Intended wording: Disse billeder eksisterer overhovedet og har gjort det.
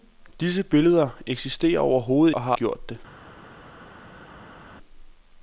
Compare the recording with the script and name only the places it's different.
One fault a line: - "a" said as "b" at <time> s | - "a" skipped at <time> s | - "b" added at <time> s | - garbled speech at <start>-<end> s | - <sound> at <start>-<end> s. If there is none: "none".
none